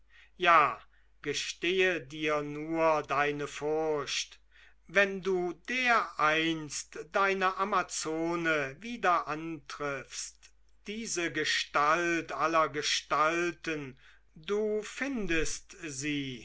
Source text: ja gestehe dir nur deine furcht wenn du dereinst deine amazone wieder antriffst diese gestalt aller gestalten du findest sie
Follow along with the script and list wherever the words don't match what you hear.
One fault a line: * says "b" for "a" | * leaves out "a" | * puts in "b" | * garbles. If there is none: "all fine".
all fine